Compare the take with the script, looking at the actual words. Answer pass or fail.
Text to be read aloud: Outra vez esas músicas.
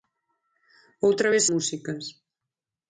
fail